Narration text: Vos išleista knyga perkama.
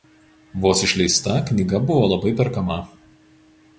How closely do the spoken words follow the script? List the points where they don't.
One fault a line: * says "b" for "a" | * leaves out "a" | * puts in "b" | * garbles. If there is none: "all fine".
* puts in "buvo labai"